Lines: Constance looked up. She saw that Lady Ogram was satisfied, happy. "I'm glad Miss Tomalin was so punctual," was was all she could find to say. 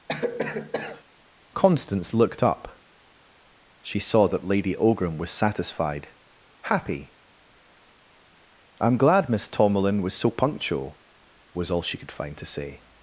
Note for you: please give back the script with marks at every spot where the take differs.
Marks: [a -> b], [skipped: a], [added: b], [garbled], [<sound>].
[cough] Constance looked up. She saw that Lady Ogram was satisfied, happy. "I'm glad Miss Tomalin was so punctual," was [skipped: was] all she could find to say.